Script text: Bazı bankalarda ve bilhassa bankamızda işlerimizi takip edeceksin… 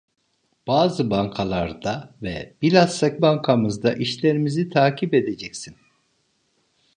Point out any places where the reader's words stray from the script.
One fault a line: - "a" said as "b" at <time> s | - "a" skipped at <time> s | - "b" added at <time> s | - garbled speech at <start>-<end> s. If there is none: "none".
none